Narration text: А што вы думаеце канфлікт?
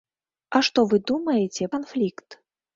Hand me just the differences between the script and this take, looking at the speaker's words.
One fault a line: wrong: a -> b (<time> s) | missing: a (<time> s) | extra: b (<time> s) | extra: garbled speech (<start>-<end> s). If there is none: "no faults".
no faults